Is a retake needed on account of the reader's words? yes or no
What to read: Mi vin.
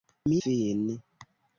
no